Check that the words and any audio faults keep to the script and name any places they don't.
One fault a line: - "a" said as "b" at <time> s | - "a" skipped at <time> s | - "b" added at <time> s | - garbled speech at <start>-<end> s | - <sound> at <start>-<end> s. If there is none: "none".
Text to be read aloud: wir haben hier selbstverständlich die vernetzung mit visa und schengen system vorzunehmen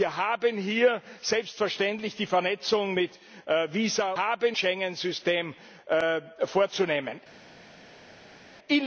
- "und" said as "haben" at 4.2 s